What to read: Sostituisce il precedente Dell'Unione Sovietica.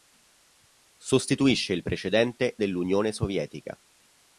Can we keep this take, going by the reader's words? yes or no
yes